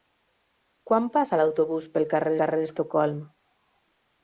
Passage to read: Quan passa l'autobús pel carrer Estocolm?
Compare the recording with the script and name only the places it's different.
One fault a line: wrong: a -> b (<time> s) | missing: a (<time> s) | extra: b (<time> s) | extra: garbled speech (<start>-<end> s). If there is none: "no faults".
extra: carrer (2.4 s)